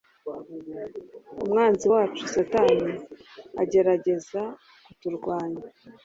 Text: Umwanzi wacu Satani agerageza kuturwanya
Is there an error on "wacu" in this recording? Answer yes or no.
no